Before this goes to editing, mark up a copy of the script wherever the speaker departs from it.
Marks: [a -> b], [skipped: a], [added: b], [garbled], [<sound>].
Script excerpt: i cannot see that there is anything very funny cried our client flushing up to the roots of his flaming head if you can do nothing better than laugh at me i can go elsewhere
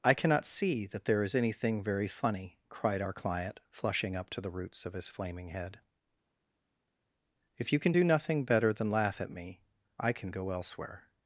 i cannot see that there is anything very funny cried our client flushing up to the roots of his flaming head if you can do nothing better than laugh at me i can go elsewhere